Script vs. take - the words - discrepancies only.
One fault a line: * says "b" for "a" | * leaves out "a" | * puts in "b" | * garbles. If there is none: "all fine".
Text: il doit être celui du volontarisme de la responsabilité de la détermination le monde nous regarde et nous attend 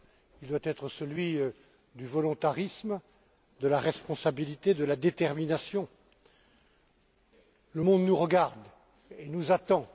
all fine